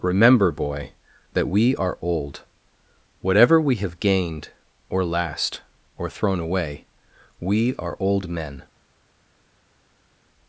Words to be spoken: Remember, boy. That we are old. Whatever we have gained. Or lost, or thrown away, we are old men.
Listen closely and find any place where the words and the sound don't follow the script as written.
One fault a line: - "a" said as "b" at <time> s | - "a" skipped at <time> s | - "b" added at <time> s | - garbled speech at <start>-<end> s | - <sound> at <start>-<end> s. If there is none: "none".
- "lost" said as "last" at 5.0 s